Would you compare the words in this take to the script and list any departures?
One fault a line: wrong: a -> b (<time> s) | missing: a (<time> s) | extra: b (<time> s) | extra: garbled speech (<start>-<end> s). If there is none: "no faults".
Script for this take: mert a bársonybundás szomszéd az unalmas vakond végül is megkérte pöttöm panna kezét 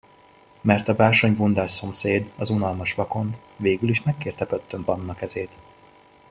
no faults